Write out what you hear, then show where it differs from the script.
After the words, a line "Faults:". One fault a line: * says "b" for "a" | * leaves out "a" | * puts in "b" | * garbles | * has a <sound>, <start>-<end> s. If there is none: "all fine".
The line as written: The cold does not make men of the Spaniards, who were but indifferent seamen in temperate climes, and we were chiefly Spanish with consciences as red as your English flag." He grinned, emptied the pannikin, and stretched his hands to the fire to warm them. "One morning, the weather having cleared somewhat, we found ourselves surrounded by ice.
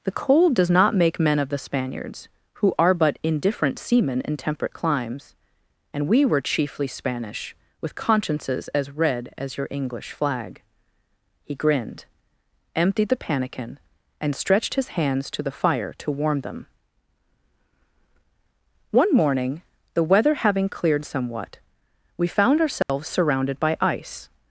The cold does not make men of the Spaniards, who are but indifferent seamen in temperate climes, and we were chiefly Spanish with consciences as red as your English flag." He grinned, emptied the pannikin, and stretched his hands to the fire to warm them. "One morning, the weather having cleared somewhat, we found ourselves surrounded by ice.
Faults:
* says "are" for "were"
* has a dropout, 22.8-22.9 s